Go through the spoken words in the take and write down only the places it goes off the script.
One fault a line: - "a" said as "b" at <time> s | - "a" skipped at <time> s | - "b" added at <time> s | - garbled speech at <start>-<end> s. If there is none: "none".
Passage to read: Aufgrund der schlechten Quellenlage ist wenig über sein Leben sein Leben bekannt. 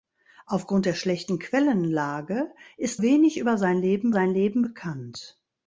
none